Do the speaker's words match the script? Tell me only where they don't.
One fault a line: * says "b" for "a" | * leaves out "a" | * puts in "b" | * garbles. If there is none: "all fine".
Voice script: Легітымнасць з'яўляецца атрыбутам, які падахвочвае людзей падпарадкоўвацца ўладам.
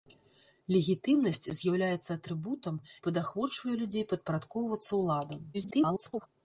* leaves out "які"
* garbles